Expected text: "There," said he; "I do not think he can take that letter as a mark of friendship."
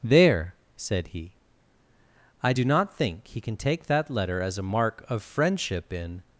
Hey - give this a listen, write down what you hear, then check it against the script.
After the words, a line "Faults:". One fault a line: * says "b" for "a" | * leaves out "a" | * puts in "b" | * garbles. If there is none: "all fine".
"There," said he; "I do not think he can take that letter as a mark of friendship." In
Faults:
* puts in "In"